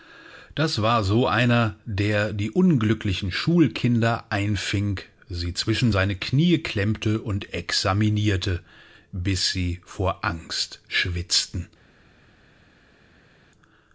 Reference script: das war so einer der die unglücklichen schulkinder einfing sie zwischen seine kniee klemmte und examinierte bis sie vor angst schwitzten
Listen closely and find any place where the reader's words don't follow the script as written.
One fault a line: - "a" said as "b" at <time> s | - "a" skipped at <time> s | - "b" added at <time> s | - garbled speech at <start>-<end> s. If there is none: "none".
none